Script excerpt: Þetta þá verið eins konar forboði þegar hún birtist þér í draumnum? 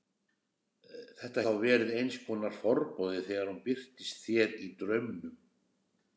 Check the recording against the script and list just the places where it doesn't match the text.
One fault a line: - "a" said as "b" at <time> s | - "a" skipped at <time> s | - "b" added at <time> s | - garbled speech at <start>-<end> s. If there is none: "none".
none